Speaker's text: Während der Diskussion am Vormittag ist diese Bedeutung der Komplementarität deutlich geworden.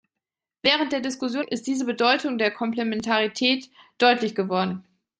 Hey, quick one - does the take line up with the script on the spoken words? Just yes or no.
no